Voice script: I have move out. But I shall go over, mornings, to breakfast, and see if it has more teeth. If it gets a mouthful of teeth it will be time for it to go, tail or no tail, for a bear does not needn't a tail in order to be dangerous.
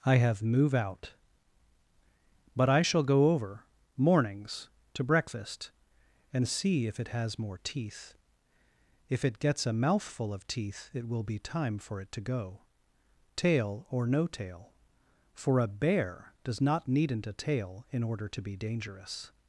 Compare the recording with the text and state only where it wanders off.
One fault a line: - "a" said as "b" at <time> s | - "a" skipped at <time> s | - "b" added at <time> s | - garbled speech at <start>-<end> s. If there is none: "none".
none